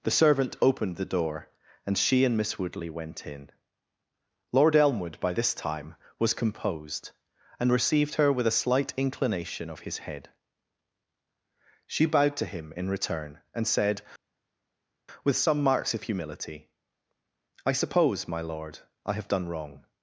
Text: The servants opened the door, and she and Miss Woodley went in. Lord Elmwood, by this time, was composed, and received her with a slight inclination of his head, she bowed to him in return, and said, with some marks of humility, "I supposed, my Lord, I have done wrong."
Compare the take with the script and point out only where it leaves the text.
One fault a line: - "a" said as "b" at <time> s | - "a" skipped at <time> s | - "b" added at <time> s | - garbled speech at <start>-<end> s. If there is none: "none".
- "servants" said as "servant" at 0.1 s
- "supposed" said as "suppose" at 17.7 s